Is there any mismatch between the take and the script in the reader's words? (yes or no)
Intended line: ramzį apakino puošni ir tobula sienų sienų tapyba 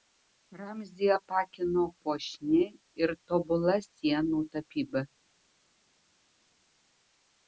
yes